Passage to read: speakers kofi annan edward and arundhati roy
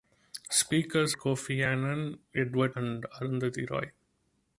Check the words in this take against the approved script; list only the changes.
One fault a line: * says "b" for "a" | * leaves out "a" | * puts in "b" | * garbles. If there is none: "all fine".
all fine